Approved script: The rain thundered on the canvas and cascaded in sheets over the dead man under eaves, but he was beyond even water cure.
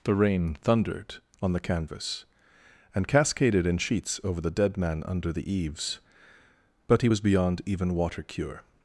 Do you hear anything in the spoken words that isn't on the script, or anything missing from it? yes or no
yes